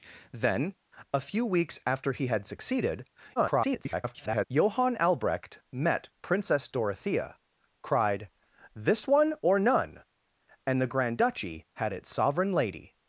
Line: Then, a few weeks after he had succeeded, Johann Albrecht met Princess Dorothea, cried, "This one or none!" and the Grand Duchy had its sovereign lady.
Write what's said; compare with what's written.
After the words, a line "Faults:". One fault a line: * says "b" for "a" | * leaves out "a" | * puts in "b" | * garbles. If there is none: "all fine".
Then, a few weeks after he had succeeded, [garbled] Johann Albrecht met Princess Dorothea, cried, "This one or none!" and the Grand Duchy had its sovereign lady.
Faults:
* garbles